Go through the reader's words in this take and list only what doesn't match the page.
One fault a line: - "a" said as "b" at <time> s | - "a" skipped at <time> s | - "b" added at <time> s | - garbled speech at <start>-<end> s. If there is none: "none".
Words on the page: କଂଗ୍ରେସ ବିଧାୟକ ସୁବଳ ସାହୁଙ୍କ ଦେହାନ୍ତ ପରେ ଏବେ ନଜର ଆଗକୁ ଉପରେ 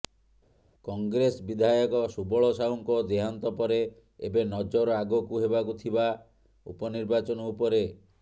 - "ହେବାକୁ ଥିବା ଉପନିର୍ବାଚନ" added at 5.5 s